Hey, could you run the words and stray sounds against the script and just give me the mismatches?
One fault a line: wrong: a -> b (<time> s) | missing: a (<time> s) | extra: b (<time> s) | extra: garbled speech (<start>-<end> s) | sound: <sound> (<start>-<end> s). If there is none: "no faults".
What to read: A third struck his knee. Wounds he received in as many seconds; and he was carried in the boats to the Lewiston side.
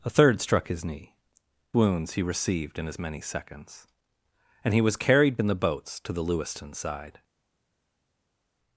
no faults